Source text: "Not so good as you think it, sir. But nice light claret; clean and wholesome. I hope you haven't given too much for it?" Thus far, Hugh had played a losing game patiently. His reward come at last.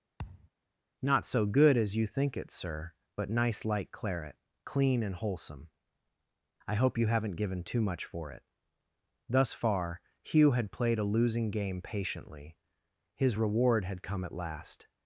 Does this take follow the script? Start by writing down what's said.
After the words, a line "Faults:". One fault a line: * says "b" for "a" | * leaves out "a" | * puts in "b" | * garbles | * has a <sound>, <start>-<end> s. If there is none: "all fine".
"Not so good as you think it, sir. But nice light claret; clean and wholesome. I hope you haven't given too much for it?" Thus far, Hugh had played a losing game patiently. His reward had come at last.
Faults:
* has a thud, 0.2-0.5 s
* puts in "had"